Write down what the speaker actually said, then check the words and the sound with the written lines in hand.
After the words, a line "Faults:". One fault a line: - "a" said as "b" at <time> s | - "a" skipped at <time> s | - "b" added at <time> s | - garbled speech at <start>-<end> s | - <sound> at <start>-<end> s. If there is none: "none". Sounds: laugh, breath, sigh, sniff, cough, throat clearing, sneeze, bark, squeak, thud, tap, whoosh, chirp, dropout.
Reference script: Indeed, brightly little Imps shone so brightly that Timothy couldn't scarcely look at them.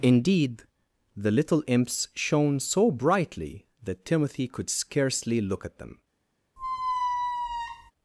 Indeed, the little Imps shone so brightly that Timothy could scarcely look at them.
Faults:
- "brightly" said as "the" at 1.1 s
- "couldn't" said as "could" at 4.5 s
- squeak at 6.6-7.9 s